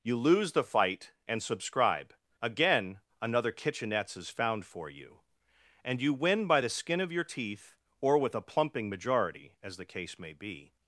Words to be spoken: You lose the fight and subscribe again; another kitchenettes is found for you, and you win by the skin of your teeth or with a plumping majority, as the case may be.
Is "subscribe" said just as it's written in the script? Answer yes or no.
yes